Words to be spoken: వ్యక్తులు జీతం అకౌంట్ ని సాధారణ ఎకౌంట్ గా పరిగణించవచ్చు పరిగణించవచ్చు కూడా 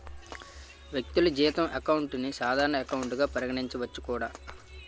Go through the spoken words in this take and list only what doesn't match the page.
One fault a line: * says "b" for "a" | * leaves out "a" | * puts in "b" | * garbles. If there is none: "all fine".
* leaves out "పరిగణించవచ్చు"